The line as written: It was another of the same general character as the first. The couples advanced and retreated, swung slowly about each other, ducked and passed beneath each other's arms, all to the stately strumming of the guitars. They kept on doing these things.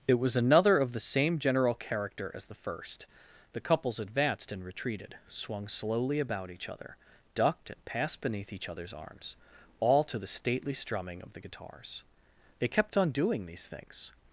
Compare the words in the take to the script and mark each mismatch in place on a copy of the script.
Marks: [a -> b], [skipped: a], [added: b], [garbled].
It was another of the same general character as the first. The couples advanced and retreated, swung slowly about each other, ducked and passed beneath each other's arms, all to the stately strumming of the guitars. They kept on doing these things.